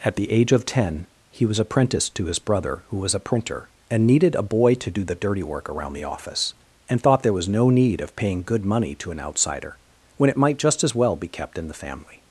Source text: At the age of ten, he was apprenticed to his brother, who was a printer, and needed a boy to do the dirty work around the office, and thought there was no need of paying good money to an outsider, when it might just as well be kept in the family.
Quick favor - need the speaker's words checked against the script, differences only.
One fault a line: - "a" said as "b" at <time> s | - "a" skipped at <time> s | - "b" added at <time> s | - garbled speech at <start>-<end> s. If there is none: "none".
none